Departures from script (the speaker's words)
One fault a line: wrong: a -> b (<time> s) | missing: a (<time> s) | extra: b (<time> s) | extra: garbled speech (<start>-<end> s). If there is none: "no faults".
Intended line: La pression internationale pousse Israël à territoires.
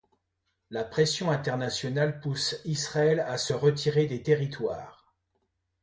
extra: se retirer des (3.4 s)